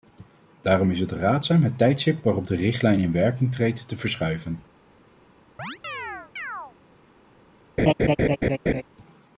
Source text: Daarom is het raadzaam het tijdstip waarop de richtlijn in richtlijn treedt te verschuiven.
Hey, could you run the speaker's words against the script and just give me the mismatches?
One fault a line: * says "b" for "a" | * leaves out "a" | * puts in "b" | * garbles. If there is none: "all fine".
* says "werking" for "richtlijn"